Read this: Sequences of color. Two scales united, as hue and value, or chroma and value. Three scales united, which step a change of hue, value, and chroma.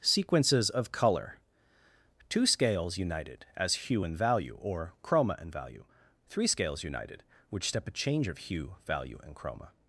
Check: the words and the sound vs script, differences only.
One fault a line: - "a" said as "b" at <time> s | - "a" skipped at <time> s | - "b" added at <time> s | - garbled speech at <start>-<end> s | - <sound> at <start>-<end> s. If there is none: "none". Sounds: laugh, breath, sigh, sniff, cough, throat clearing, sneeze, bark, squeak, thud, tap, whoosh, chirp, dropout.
none